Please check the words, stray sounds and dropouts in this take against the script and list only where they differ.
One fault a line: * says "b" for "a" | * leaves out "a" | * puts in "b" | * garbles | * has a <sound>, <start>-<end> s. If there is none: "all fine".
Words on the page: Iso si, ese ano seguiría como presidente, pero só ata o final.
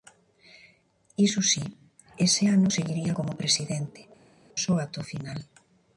* leaves out "pero"